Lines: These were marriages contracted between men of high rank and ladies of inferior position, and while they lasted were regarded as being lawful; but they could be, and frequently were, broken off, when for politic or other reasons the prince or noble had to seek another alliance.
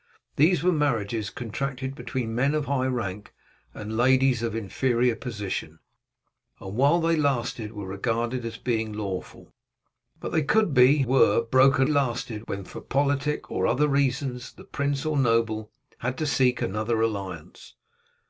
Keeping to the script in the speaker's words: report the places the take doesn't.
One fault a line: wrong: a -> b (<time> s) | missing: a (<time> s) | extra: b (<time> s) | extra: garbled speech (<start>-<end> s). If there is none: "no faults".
missing: and frequently (11.0 s)
wrong: off -> lasted (11.9 s)